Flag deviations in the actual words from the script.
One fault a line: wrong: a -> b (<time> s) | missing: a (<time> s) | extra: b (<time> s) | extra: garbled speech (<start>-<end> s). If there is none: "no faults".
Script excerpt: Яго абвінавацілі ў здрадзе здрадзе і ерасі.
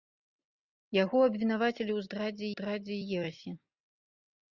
no faults